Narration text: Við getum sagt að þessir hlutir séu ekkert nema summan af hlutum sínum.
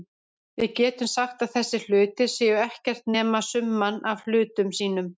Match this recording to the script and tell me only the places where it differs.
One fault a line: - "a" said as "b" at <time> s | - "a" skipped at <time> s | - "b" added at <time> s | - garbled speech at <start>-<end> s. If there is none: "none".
none